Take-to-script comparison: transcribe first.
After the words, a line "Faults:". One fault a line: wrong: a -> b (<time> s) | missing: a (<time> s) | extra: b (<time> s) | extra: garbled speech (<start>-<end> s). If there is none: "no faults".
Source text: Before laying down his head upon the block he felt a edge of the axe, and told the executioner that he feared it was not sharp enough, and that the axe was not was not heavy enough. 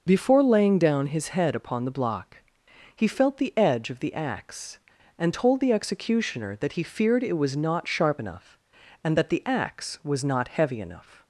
Before laying down his head upon the block he felt the edge of the axe, and told the executioner that he feared it was not sharp enough, and that the axe was not heavy enough.
Faults:
wrong: a -> the (3.4 s)
missing: was not (10.5 s)